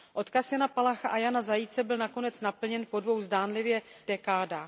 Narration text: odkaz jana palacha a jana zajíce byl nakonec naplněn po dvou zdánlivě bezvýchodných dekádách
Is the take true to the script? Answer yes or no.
no